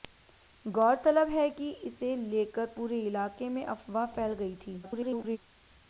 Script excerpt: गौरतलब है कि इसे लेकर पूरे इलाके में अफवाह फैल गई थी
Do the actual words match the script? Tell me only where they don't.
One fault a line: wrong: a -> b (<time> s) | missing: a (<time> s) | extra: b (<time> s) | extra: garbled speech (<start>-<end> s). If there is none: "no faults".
extra: garbled speech (4.8-5.4 s)